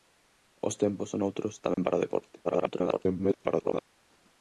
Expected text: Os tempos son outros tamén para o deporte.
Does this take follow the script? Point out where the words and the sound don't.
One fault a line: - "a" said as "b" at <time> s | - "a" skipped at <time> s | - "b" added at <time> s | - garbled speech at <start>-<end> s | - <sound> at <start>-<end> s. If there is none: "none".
- dropout at 1.7-1.8 s
- garbled speech at 2.4-3.8 s